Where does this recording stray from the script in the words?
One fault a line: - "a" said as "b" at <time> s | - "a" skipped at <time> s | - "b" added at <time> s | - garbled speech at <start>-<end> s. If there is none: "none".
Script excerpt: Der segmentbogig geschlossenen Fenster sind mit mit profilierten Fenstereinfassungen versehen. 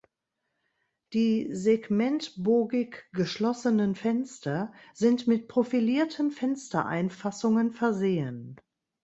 - "Der" said as "Die" at 1.1 s
- "mit" skipped at 5.5 s